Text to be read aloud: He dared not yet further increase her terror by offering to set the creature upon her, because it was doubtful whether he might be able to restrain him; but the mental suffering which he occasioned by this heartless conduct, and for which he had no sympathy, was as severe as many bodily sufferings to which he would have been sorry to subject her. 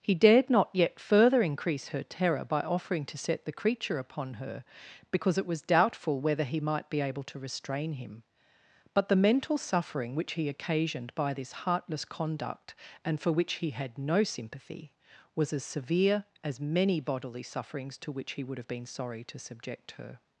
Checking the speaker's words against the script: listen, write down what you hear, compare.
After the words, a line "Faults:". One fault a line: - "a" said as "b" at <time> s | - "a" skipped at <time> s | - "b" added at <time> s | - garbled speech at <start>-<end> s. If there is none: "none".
He dared not yet further increase her terror by offering to set the creature upon her, because it was doubtful whether he might be able to restrain him; but the mental suffering which he occasioned by this heartless conduct, and for which he had no sympathy, was as severe as many bodily sufferings to which he would have been sorry to subject her.
Faults:
none